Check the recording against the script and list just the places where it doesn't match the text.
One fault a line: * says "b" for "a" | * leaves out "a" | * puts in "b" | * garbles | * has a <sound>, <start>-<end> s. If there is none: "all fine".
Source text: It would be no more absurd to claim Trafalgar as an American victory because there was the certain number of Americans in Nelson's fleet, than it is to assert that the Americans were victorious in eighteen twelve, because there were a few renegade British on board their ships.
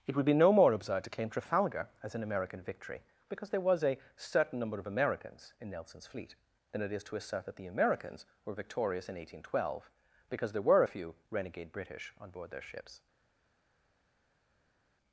* says "a" for "the"